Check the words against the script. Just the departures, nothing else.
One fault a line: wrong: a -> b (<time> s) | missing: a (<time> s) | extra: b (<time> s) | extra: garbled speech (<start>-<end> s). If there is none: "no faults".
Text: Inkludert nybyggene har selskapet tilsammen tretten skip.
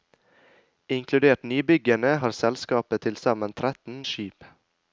no faults